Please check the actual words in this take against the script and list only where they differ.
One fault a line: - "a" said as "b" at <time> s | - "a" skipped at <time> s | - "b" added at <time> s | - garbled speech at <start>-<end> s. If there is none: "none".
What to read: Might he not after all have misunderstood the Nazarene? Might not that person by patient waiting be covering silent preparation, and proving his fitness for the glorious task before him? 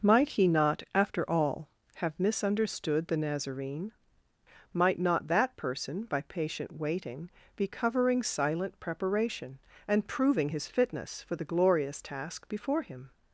none